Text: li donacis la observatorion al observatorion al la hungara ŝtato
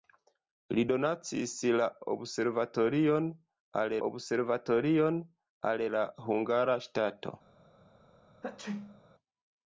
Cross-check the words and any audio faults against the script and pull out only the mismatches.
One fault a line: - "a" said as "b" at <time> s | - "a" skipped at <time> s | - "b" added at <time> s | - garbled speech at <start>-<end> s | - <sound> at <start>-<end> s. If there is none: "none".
- sneeze at 8.4-9.0 s